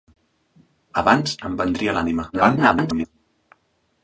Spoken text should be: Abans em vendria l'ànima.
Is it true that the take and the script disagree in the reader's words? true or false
true